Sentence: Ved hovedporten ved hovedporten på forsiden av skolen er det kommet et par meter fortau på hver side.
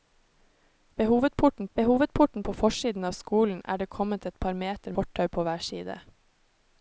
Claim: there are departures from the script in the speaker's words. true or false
false